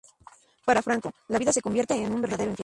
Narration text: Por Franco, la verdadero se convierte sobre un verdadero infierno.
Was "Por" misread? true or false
true